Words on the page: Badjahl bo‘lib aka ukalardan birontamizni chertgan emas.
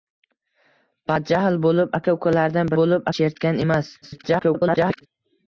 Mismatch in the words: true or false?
true